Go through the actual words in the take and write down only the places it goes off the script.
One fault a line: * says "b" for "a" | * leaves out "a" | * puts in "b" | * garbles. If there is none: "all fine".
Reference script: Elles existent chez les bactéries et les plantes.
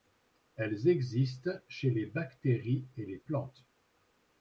all fine